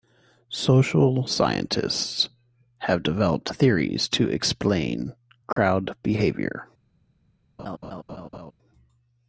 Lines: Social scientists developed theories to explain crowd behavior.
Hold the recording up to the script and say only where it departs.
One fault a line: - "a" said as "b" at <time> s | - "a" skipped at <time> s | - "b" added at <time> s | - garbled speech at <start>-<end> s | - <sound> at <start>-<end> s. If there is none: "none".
- "have" added at 2.8 s
- dropout at 5.5-5.6 s
- laugh at 7.6-8.5 s